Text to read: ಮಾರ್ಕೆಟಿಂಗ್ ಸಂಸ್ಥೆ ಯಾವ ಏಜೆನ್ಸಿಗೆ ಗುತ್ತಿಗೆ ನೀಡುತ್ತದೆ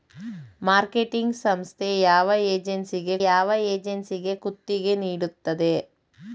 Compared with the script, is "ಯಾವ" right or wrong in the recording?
right